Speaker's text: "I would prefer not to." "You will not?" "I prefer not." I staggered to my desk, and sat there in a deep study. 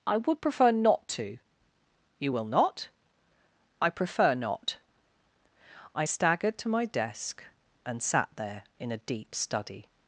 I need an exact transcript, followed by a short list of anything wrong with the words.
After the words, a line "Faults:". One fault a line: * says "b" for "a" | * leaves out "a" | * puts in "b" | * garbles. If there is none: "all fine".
"I would prefer not to." "You will not?" "I prefer not." I staggered to my desk, and sat there in a deep study.
Faults:
all fine